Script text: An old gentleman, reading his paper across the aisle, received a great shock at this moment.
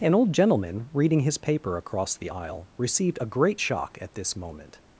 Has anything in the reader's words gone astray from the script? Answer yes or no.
no